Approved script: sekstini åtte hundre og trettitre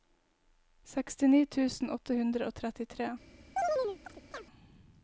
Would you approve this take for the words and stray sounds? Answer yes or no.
no